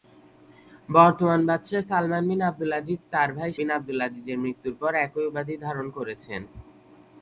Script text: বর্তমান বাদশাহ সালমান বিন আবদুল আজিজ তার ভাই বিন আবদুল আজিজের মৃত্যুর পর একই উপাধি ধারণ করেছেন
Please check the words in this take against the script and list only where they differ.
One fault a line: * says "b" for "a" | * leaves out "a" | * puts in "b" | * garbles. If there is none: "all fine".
all fine